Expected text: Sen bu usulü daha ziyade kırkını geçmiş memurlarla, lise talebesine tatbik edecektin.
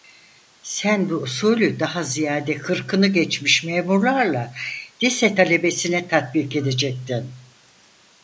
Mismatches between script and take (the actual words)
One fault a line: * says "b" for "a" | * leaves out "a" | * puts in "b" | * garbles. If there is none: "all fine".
all fine